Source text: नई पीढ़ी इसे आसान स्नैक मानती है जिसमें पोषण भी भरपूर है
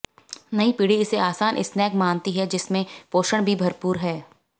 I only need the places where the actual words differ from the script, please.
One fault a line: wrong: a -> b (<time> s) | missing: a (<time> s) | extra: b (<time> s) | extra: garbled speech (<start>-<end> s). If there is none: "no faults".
no faults